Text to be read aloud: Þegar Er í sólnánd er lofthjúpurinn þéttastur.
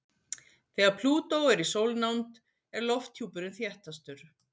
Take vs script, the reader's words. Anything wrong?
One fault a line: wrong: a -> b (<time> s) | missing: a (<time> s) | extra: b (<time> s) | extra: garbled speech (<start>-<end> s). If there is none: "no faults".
extra: Plútó (1.0 s)